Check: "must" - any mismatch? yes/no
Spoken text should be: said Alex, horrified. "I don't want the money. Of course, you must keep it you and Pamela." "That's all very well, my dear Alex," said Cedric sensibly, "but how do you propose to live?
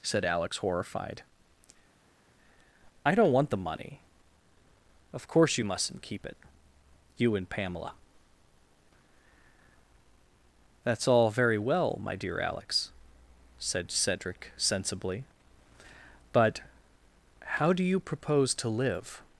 yes